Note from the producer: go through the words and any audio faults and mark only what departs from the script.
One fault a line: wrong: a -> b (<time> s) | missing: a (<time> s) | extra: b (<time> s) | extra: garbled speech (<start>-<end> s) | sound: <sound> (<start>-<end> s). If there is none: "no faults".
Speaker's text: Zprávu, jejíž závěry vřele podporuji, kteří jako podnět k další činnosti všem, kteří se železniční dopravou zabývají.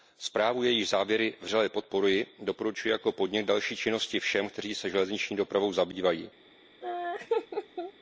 wrong: kteří -> doporučuji (2.4 s)
sound: laugh (6.8-7.9 s)